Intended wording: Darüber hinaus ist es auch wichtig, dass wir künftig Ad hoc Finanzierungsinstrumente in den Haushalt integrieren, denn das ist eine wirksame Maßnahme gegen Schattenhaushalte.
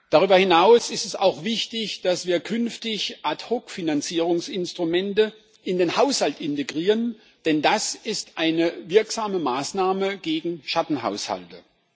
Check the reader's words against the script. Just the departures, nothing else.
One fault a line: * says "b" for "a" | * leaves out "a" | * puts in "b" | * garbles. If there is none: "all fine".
all fine